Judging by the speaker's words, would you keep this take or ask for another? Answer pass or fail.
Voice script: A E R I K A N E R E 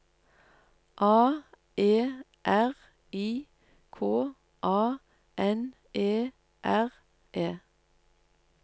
pass